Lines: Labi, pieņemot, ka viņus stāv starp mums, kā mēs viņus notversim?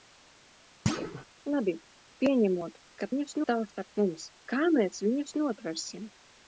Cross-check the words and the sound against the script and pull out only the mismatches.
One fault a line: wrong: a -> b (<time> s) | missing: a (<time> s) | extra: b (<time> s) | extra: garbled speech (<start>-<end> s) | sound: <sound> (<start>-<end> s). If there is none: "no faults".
sound: thud (0.9-1.3 s)